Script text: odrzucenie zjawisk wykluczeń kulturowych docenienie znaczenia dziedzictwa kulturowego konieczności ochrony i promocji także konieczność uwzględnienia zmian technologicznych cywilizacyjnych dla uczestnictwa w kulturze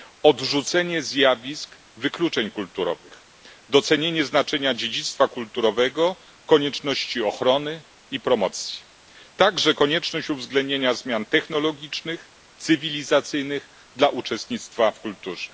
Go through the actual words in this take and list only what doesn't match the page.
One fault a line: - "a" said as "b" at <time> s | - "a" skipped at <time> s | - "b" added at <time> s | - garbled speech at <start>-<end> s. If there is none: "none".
none